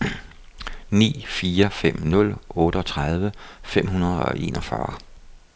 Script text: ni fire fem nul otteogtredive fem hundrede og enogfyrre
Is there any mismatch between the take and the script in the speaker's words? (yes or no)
no